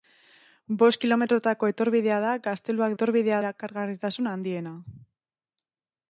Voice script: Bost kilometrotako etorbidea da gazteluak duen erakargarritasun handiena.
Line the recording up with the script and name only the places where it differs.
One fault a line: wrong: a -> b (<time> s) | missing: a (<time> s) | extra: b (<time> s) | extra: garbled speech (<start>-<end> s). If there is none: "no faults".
wrong: duen -> etorbidea (2.9 s)